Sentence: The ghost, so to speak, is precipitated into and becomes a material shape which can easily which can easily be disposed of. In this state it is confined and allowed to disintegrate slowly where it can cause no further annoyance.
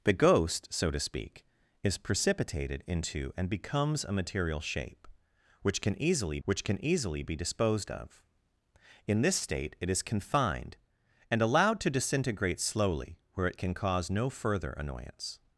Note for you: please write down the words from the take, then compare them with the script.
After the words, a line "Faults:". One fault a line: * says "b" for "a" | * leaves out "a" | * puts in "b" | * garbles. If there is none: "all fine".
The ghost, so to speak, is precipitated into and becomes a material shape which can easily which can easily be disposed of. In this state it is confined and allowed to disintegrate slowly where it can cause no further annoyance.
Faults:
all fine